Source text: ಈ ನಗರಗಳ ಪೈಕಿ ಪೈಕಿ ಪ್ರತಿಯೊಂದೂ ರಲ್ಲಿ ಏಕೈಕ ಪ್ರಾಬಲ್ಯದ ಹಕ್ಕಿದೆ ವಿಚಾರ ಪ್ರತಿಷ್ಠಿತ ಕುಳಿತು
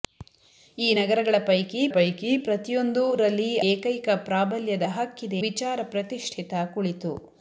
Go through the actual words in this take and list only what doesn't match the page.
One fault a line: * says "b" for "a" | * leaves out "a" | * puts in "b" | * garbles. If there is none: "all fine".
all fine